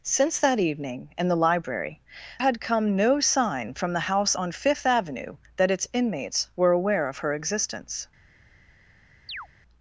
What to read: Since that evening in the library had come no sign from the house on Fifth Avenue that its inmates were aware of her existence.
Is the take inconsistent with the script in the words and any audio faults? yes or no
yes